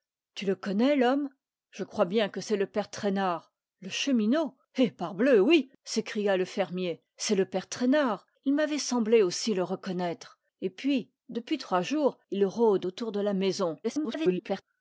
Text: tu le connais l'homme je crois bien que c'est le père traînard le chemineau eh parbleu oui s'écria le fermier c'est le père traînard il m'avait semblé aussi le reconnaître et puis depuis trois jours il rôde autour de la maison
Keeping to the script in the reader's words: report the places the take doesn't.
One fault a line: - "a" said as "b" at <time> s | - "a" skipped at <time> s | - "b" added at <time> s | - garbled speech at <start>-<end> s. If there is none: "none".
- garbled speech at 13.8-14.6 s